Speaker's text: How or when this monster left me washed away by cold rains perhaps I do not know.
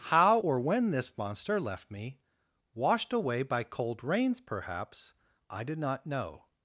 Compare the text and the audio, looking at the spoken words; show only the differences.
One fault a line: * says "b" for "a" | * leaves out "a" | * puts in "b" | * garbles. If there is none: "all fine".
* says "did" for "do"